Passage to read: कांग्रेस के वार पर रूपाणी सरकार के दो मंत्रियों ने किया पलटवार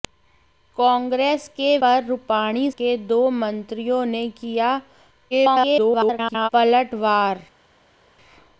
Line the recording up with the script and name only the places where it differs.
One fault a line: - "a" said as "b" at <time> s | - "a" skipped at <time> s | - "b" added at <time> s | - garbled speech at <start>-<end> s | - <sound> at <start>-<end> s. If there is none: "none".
- "वार" skipped at 1.8 s
- "सरकार" skipped at 2.7 s
- garbled speech at 5.3-6.5 s